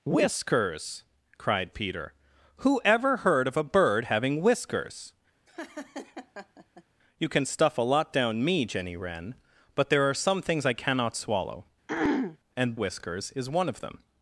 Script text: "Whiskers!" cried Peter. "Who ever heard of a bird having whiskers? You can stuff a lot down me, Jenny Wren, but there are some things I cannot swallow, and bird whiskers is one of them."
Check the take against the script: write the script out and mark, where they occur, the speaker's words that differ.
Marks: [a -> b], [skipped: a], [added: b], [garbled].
"Whiskers!" cried Peter. "Who ever heard of a bird having whiskers? You can stuff a lot down me, Jenny Wren, but there are some things I cannot swallow, and [skipped: bird] whiskers is one of them."